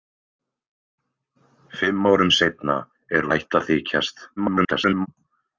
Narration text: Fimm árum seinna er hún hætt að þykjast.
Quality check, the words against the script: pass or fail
fail